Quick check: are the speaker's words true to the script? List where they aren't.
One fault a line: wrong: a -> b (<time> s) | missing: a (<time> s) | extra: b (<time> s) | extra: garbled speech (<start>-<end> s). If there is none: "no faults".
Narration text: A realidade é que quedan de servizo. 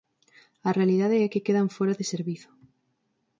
extra: fóra (1.8 s)